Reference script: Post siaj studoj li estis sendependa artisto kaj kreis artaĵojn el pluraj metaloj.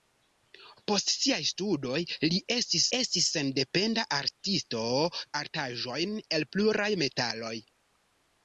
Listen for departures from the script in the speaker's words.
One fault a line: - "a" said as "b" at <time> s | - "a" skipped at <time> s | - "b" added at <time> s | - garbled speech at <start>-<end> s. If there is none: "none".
- "estis" added at 3.0 s
- "kaj kreis" skipped at 4.8 s